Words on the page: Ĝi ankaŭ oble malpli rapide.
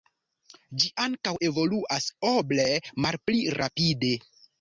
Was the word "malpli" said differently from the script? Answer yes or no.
no